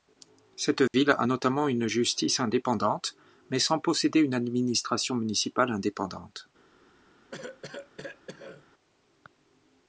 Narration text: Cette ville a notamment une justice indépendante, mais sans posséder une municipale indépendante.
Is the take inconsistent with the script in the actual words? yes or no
yes